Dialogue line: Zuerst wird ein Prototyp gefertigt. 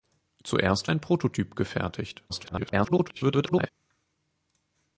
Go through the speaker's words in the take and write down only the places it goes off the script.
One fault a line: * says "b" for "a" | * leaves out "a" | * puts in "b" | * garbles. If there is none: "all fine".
* leaves out "wird"
* garbles